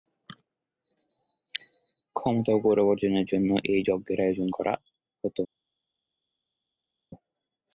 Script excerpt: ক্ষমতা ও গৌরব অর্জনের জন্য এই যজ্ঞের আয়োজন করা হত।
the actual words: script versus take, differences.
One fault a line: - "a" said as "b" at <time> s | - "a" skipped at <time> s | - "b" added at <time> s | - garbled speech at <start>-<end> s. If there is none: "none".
none